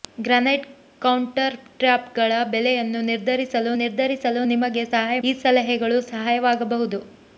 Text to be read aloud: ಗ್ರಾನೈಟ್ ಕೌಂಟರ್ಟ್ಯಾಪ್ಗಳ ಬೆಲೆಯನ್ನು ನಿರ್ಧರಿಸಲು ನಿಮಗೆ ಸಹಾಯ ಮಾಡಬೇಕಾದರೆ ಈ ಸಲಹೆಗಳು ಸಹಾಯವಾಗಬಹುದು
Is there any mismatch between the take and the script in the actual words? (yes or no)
yes